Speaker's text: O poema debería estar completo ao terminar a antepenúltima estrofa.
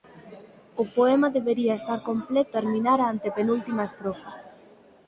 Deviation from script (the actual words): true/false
true